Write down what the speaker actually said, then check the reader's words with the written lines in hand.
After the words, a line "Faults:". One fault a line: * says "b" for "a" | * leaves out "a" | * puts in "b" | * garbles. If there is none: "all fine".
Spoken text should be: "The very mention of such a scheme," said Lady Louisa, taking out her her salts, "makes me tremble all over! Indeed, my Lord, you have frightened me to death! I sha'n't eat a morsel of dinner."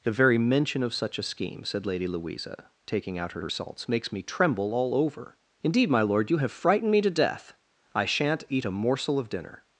"The very mention of such a scheme," said Lady Louisa, taking out her her salts, "makes me tremble all over! Indeed, my Lord, you have frightened me to death! I sha'n't eat a morsel of dinner."
Faults:
all fine